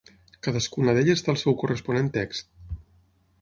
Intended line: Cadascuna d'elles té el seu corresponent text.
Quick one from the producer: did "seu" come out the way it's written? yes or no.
yes